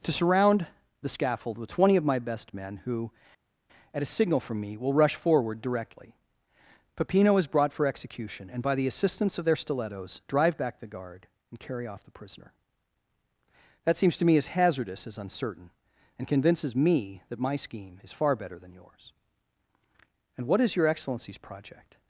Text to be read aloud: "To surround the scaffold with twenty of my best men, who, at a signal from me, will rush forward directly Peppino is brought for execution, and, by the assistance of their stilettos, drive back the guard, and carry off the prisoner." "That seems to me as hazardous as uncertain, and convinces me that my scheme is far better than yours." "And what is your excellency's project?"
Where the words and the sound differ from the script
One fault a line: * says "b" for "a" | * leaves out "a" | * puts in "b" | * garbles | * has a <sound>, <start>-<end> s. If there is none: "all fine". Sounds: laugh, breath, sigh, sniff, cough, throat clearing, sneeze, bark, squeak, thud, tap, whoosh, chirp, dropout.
all fine